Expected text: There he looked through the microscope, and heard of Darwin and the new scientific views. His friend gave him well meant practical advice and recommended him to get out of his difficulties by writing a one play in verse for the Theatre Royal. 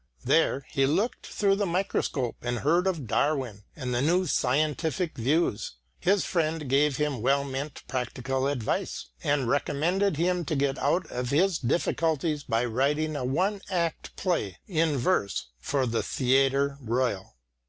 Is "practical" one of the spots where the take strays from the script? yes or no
no